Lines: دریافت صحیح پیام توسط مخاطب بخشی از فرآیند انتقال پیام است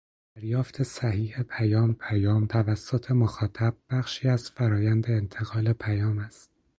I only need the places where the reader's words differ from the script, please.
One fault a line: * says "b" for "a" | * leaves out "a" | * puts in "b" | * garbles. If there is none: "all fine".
* puts in "پیام"